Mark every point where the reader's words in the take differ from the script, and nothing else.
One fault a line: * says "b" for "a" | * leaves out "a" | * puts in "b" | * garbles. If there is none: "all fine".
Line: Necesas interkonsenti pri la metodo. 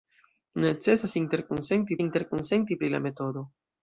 * puts in "interkonsenti"